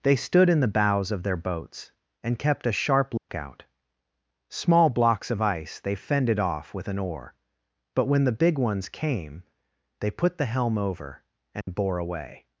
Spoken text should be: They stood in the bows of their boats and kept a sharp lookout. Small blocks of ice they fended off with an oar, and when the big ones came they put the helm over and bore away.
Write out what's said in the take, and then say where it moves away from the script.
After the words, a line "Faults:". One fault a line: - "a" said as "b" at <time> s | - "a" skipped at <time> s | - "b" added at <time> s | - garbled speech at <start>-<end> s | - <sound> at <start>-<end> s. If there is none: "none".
They stood in the bows of their boats and kept a sharp lookout. Small blocks of ice they fended off with an oar, but when the big ones came they put the helm over and bore away.
Faults:
- dropout at 3.2-3.3 s
- "and" said as "but" at 7.9 s
- dropout at 11.6-11.7 s